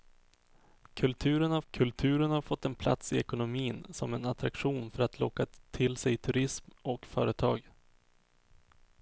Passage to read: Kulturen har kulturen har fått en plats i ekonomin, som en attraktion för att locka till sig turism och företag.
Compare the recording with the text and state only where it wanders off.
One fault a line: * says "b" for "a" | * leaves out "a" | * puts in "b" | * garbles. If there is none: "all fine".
all fine